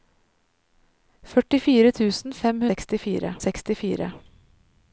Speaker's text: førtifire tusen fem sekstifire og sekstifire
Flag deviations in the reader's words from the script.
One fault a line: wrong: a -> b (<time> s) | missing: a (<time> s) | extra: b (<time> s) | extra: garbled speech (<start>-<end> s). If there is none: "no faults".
no faults